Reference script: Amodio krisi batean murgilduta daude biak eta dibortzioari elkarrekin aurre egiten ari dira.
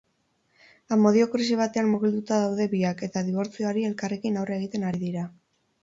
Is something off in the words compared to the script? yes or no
no